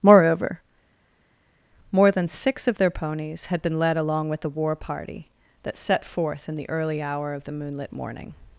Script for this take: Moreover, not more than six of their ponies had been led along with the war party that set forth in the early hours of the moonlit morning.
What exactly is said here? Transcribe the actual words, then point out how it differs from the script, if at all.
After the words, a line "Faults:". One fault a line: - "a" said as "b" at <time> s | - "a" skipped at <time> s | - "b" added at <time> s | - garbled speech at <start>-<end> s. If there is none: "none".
Moreover, more than six of their ponies had been led along with the war party that set forth in the early hour of the moonlit morning.
Faults:
- "not" skipped at 0.6 s
- "hours" said as "hour" at 7.0 s